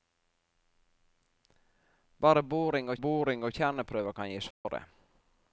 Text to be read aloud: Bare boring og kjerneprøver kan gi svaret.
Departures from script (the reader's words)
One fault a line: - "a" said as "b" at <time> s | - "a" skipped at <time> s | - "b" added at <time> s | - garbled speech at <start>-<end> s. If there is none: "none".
- "boring og" added at 2.9 s